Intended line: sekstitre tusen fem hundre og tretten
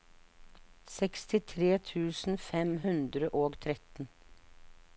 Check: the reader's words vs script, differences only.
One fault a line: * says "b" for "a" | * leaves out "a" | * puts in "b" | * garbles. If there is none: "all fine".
all fine